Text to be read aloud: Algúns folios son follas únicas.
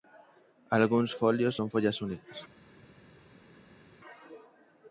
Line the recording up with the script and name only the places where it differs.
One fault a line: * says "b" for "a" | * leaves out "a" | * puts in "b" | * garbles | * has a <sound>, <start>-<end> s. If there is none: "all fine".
all fine